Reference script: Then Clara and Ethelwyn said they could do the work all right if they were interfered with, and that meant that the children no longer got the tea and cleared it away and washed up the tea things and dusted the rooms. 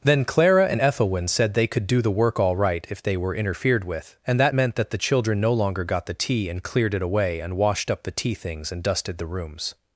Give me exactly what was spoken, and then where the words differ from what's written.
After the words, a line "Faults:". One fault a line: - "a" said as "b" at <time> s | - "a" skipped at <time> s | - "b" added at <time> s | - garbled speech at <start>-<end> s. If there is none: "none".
Then Clara and Ethelwyn said they could do the work all right if they were interfered with, and that meant that the children no longer got the tea and cleared it away and washed up the tea things and dusted the rooms.
Faults:
none